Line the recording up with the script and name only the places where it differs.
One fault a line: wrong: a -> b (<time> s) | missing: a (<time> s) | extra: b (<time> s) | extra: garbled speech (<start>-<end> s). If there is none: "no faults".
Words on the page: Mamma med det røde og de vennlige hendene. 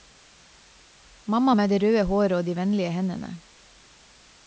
extra: håret (2.1 s)